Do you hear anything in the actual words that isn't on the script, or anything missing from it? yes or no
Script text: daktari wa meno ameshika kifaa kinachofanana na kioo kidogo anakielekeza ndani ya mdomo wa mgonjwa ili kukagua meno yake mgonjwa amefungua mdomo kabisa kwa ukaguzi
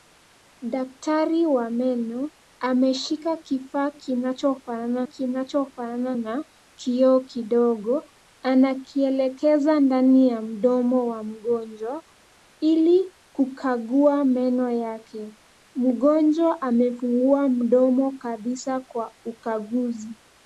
yes